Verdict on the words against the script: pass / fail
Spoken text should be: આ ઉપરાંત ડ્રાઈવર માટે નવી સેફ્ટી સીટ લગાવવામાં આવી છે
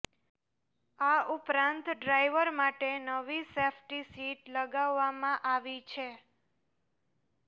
pass